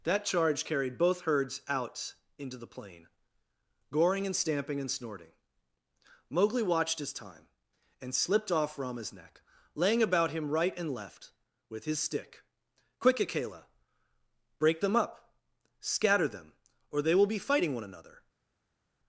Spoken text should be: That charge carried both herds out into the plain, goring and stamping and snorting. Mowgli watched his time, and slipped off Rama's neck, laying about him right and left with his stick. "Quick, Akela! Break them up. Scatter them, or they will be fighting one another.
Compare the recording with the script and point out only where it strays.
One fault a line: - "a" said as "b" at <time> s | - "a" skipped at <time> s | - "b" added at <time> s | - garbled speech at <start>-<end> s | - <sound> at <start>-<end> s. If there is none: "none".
none